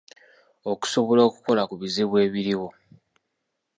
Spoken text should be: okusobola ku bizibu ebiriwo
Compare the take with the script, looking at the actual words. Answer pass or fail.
fail